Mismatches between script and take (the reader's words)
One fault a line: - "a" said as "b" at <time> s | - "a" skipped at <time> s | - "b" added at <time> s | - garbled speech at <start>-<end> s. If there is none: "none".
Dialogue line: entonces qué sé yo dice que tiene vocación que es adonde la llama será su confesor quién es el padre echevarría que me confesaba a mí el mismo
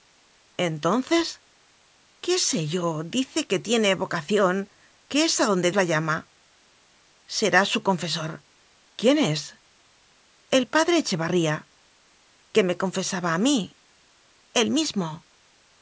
none